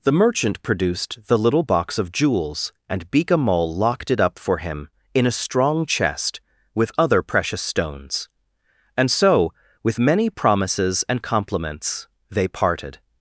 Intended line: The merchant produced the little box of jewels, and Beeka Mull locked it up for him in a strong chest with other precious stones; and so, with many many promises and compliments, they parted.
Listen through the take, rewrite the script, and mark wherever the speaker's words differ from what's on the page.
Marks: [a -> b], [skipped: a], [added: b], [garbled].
The merchant produced the little box of jewels, and Beeka Mull locked it up for him in a strong chest with other precious stones; and so, with many [skipped: many] promises and compliments, they parted.